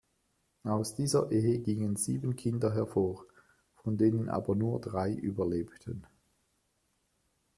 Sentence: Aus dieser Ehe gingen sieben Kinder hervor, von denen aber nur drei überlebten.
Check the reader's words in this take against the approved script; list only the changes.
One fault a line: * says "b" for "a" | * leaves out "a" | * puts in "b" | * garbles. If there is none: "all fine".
all fine